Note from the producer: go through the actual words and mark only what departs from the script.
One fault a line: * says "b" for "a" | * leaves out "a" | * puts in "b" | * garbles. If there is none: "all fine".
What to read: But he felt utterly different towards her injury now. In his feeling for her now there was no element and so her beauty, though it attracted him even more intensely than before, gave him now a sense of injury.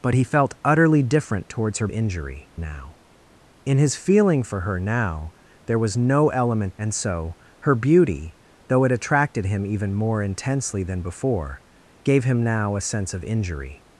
all fine